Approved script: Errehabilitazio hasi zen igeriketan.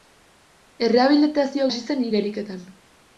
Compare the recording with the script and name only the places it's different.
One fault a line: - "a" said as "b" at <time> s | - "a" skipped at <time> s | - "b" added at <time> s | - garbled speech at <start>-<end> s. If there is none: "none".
none